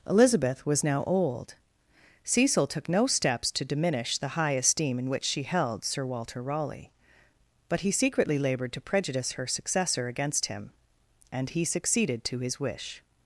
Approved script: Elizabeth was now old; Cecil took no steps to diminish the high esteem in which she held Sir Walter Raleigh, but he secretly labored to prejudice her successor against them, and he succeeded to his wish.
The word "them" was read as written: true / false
false